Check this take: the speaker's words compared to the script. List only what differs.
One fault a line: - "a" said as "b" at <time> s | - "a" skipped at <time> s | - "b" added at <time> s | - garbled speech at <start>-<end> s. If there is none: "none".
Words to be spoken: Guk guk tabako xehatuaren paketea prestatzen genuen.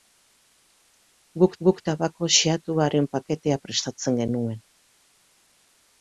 none